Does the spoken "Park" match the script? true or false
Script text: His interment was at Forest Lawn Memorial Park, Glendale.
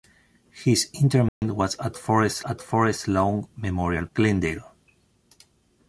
false